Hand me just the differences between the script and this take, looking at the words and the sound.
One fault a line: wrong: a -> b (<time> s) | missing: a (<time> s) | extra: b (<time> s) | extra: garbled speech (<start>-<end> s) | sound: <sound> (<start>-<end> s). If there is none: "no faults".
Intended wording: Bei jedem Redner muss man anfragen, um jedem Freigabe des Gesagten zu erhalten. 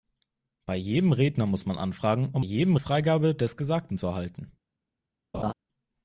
sound: laugh (5.3-5.5 s)